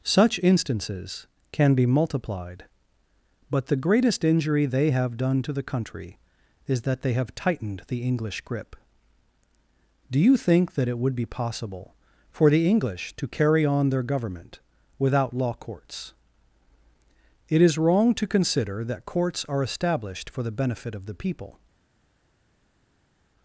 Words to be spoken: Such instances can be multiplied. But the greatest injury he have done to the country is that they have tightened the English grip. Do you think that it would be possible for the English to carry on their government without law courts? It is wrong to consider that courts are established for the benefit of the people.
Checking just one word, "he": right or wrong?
wrong